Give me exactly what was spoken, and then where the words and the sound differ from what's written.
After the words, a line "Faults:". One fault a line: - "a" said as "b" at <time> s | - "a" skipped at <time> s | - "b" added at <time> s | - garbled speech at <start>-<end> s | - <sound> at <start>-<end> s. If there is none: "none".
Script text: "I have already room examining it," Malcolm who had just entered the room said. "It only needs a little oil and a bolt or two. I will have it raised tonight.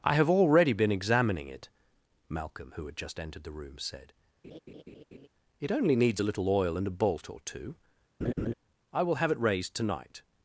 "I have already been examining it," Malcolm who had just entered the room said. "It only needs a little oil and a bolt or two. I will have it raised tonight.
Faults:
- "room" said as "been" at 0.7 s
- laugh at 4.4-5.3 s
- laugh at 8.2-8.5 s